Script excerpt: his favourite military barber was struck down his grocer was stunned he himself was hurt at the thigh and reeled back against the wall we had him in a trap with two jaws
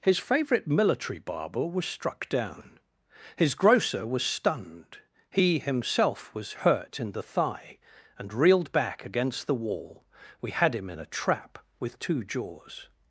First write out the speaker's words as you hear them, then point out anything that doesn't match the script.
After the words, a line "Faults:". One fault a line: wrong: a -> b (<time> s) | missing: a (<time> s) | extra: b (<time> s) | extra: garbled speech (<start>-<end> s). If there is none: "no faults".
his favourite military barber was struck down his grocer was stunned he himself was hurt in the thigh and reeled back against the wall we had him in a trap with two jaws
Faults:
wrong: at -> in (7.0 s)